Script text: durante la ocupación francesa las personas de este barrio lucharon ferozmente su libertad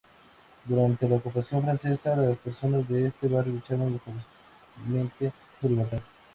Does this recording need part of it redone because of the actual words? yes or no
no